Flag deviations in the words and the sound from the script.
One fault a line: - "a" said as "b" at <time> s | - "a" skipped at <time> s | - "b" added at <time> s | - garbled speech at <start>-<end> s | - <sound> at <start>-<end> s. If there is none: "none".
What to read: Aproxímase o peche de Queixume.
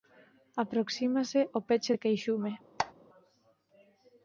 - squeak at 2.8-2.9 s